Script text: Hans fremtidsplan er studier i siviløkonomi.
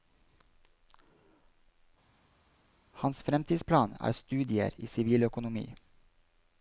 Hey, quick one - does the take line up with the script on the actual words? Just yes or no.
yes